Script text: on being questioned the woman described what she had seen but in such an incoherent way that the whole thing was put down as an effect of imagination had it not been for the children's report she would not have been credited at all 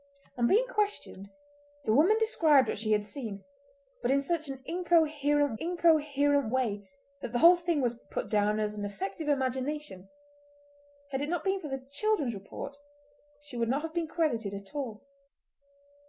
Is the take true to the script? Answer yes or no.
no